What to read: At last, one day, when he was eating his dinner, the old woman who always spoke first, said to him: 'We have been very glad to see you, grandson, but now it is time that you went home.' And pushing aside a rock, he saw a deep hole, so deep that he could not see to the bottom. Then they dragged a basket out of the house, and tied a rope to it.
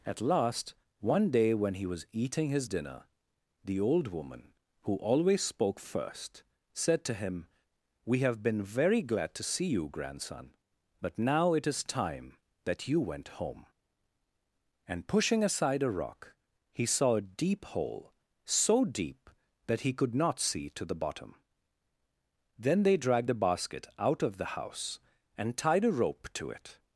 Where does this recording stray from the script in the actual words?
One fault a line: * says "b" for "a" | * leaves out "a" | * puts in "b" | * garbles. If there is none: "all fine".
* says "the" for "a"